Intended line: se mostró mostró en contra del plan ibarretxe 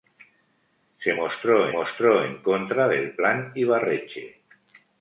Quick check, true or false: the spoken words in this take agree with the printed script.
true